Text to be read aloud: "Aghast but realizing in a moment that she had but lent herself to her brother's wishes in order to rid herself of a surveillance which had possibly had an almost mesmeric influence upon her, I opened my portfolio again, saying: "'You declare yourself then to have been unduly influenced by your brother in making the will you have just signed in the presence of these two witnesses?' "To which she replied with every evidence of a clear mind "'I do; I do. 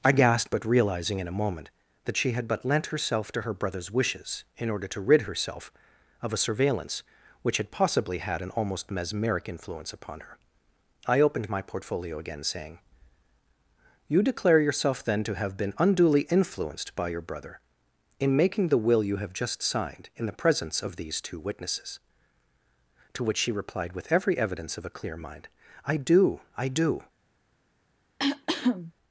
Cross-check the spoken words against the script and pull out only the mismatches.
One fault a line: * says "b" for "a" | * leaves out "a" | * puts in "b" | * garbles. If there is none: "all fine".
* says "I gasped" for "Aghast"